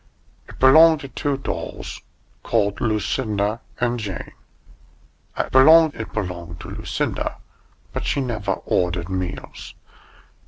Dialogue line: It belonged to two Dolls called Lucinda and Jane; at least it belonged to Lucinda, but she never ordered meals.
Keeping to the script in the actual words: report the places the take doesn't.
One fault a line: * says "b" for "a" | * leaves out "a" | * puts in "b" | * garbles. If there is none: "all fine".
* says "belonged" for "least"